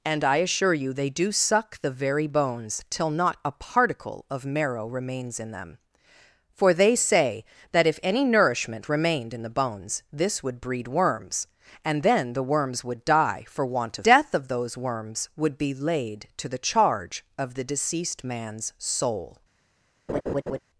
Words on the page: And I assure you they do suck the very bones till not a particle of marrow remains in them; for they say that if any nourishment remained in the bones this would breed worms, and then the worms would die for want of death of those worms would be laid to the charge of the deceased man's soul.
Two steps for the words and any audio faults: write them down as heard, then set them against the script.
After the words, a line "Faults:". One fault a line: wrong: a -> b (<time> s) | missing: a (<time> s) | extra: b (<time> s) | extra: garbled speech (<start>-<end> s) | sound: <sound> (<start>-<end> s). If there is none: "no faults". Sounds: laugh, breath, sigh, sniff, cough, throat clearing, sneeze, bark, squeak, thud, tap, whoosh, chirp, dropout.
And I assure you they do suck the very bones till not a particle of marrow remains in them; for they say that if any nourishment remained in the bones this would breed worms, and then the worms would die for want of death of those worms would be laid to the charge of the deceased man's soul.
Faults:
sound: laugh (20.1-20.6 s)